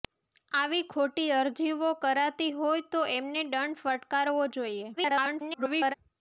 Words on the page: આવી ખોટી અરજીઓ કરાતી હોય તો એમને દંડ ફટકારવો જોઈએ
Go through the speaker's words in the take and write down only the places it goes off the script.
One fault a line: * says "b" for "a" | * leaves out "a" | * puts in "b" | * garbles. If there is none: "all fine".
* garbles